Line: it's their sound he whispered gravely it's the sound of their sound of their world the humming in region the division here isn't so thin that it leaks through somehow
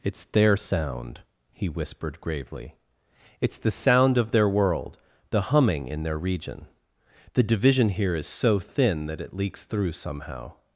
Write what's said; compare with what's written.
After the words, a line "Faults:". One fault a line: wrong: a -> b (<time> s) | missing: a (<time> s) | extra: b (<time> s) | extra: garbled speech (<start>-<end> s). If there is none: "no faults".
it's their sound he whispered gravely it's the sound of their world the humming in their region the division here is so thin that it leaks through somehow
Faults:
missing: sound of their (4.5 s)
extra: their (6.0 s)
wrong: isn't -> is (8.1 s)